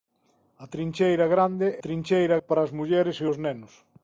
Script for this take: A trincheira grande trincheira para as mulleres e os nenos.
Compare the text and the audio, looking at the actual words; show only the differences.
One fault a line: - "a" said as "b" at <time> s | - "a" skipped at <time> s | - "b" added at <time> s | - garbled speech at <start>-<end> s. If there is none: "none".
none